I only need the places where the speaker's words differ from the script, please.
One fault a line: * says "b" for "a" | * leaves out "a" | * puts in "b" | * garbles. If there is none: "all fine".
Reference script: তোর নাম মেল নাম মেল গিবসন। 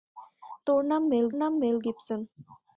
all fine